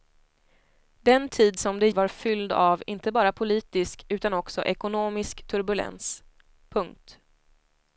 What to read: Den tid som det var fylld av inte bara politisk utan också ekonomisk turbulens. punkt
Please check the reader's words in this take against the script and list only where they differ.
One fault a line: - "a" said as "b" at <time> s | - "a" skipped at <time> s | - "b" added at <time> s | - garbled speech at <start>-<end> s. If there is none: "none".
none